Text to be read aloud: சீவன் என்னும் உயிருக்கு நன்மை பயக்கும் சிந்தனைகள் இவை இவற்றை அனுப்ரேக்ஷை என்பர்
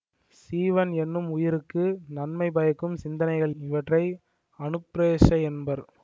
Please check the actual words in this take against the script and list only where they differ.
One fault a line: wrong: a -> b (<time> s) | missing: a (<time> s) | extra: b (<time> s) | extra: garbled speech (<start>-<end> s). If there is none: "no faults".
missing: இவை (3.5 s)